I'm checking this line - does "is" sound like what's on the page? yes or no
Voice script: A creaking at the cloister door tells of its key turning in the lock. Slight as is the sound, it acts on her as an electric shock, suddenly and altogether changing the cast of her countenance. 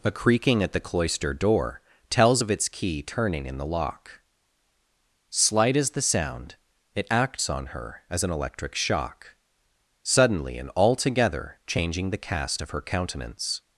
no